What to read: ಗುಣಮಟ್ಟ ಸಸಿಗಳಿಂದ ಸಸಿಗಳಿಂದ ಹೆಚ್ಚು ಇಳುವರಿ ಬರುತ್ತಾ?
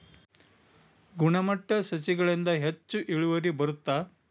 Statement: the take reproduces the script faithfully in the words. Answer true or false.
false